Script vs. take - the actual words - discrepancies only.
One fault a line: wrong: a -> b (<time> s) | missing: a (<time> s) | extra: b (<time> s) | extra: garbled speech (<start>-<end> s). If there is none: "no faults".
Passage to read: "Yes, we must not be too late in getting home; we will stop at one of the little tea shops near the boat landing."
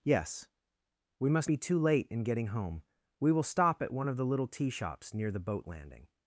missing: not (1.5 s)